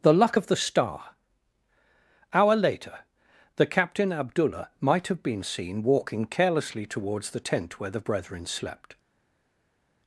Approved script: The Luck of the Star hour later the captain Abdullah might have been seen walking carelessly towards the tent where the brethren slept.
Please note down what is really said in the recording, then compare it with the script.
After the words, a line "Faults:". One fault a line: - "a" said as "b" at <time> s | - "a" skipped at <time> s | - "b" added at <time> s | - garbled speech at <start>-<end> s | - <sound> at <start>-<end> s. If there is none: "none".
The Luck of the Star hour later the captain Abdullah might have been seen walking carelessly towards the tent where the brethren slept.
Faults:
none